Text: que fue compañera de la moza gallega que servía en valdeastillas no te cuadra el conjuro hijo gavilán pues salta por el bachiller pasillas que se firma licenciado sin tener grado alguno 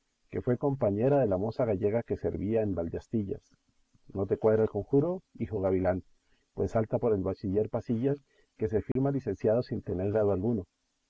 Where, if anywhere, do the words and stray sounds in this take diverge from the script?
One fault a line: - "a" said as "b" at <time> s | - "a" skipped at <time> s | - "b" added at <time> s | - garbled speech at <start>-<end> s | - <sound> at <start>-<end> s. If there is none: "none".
- dropout at 8.9-9.0 s